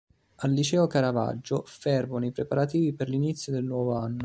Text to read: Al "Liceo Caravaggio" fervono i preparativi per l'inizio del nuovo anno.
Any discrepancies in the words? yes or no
no